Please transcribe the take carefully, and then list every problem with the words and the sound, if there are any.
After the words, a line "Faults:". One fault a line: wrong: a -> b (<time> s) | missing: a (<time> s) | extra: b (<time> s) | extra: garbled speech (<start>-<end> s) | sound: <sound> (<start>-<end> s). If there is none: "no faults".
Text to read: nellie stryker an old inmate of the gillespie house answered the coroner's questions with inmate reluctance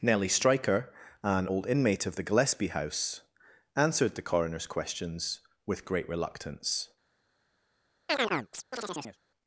nellie stryker an old inmate of the gillespie house answered the coroner's questions with great reluctance
Faults:
wrong: inmate -> great (5.8 s)
sound: chirp (8.1-9.2 s)